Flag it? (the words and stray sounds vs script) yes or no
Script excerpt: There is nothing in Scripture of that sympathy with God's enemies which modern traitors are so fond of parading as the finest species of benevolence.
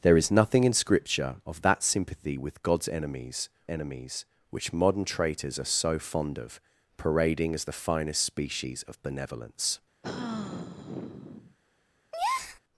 yes